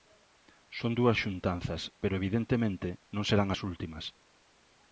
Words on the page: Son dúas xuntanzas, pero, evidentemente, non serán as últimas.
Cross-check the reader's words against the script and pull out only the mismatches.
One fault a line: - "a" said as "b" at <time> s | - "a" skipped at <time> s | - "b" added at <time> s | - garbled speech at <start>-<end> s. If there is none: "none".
none